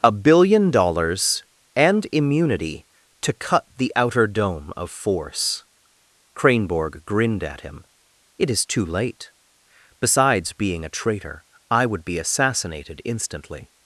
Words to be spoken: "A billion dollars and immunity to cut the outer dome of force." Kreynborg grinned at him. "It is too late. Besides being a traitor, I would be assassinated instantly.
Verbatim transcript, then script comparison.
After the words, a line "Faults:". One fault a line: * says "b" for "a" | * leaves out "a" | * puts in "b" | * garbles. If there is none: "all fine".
"A billion dollars and immunity to cut the outer dome of force." Kreynborg grinned at him. "It is too late. Besides being a traitor, I would be assassinated instantly.
Faults:
all fine